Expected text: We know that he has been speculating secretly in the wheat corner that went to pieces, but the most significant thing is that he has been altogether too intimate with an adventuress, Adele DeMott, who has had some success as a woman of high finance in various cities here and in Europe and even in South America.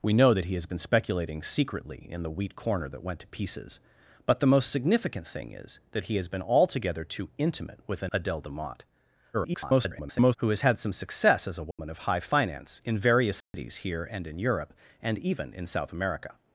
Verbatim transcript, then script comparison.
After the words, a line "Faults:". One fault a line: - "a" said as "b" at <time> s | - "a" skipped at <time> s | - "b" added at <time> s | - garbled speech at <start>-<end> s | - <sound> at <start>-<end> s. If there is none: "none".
We know that he has been speculating secretly in the wheat corner that went to pieces, but the most significant thing is that he has been altogether too intimate with an Adele DeMott, [garbled] who has had some success as a woman of high finance in various cities here and in Europe and even in South America.
Faults:
- "adventuress" skipped at 8.1 s
- garbled speech at 9.3-10.4 s
- dropout at 11.7-11.8 s
- dropout at 13.4-13.5 s